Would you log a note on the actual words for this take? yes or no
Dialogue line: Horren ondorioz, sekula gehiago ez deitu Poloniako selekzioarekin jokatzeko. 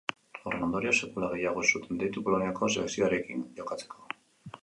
yes